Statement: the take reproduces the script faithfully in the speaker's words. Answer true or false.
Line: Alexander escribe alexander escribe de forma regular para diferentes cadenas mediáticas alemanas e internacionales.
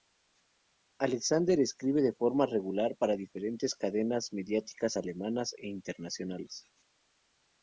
false